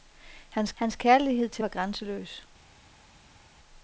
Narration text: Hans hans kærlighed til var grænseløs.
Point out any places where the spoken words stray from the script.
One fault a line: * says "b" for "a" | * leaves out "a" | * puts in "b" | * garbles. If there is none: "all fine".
all fine